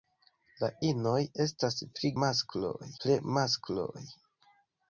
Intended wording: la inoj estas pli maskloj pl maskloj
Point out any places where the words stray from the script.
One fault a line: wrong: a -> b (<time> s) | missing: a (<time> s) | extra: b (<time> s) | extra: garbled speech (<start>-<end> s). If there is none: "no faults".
no faults